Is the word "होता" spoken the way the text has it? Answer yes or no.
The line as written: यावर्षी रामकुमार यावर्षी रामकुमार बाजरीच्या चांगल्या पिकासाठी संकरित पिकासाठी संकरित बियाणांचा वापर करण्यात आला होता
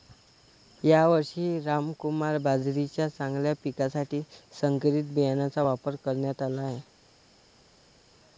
no